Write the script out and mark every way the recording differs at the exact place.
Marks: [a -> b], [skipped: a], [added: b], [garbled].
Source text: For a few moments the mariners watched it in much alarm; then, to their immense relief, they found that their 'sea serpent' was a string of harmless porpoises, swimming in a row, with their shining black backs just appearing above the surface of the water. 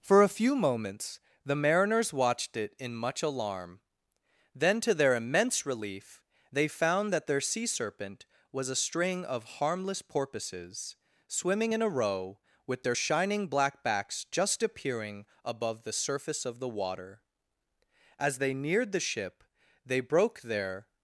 For a few moments the mariners watched it in much alarm; then, to their immense relief, they found that their 'sea serpent' was a string of harmless porpoises, swimming in a row, with their shining black backs just appearing above the surface of the water. [added: As they neared the ship they broke their]